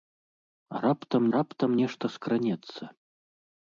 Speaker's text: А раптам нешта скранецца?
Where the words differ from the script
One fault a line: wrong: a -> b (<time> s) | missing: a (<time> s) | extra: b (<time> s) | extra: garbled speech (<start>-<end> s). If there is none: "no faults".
extra: раптам (1.3 s)